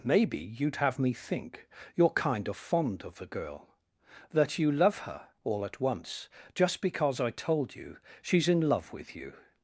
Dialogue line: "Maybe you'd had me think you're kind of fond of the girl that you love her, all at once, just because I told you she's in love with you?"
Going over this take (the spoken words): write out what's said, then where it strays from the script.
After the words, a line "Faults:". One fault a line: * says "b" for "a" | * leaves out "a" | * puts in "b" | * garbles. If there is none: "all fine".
"Maybe you'd have me think you're kind of fond of the girl that you love her, all at once, just because I told you she's in love with you?"
Faults:
* says "have" for "had"